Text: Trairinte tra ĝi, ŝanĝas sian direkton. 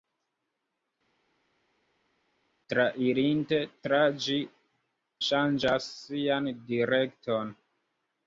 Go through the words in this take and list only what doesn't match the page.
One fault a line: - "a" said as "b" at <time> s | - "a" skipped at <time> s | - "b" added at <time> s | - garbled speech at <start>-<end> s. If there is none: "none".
none